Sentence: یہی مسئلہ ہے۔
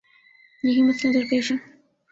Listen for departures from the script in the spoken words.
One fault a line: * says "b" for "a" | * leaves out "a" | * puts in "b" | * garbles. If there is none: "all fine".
* puts in "درپیش"